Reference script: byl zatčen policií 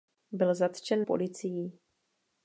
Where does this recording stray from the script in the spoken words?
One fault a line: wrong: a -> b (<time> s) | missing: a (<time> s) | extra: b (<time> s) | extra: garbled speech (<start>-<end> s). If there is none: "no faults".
no faults